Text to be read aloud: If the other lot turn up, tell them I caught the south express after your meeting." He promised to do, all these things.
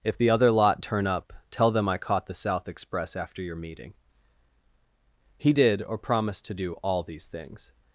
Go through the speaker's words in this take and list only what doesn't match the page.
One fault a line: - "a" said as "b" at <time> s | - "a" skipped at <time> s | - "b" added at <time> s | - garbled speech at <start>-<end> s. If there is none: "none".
- "did or" added at 5.5 s